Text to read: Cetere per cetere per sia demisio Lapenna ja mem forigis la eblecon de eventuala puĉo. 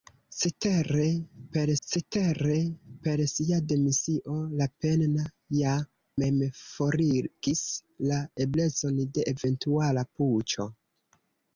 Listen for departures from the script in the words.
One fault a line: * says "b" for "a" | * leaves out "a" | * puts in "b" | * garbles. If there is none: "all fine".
all fine